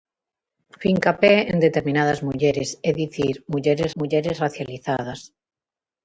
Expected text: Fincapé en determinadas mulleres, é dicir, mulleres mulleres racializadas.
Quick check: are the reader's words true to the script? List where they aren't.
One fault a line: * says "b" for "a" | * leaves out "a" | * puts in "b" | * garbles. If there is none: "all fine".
all fine